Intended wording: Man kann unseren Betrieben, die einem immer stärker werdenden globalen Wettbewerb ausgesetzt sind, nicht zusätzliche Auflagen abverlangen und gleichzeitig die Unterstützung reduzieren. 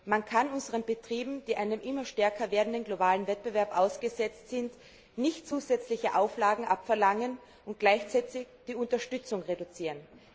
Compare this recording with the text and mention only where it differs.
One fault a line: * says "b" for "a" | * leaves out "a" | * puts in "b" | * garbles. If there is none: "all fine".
all fine